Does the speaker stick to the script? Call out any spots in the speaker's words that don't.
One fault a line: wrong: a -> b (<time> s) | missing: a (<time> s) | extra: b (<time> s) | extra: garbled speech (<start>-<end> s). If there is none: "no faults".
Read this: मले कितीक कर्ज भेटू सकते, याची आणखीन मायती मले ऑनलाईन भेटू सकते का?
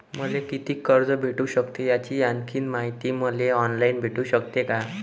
no faults